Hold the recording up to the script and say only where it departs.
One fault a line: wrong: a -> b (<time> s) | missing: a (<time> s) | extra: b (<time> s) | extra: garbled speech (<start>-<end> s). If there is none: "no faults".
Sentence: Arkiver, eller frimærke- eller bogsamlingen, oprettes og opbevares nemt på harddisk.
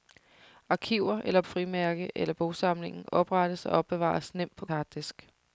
no faults